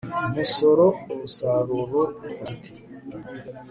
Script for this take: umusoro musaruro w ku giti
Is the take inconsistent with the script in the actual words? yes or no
no